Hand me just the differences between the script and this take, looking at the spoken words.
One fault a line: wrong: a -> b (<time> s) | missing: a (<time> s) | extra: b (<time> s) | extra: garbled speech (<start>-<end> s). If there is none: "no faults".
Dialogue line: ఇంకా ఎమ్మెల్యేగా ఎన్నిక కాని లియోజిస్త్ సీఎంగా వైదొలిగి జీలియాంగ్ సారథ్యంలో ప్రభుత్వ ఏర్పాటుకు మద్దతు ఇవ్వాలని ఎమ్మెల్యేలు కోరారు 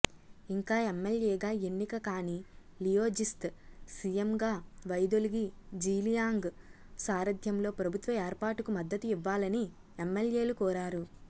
no faults